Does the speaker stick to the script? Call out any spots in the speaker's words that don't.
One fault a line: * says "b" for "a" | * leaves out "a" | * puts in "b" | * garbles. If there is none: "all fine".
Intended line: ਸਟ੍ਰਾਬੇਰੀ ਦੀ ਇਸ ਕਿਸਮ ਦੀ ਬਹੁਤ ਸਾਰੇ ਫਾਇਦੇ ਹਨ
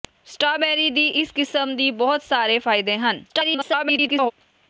* garbles